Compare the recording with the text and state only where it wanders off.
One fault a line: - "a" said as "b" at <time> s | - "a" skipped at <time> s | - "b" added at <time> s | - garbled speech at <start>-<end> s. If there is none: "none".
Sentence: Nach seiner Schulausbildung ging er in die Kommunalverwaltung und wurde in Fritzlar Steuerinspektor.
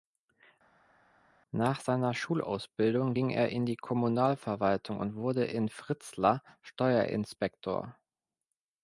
none